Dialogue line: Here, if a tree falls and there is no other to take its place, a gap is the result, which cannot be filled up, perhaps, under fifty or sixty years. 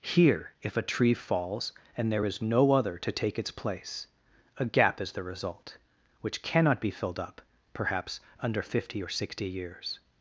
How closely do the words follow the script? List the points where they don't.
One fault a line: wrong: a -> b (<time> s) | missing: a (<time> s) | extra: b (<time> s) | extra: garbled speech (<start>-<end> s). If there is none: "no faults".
no faults